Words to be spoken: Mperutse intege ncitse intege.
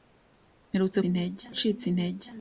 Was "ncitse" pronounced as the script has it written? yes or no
yes